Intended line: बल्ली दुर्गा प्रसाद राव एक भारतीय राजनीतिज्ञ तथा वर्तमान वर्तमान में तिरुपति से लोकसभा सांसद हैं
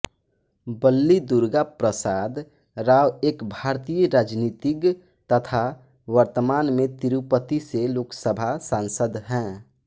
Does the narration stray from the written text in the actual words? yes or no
yes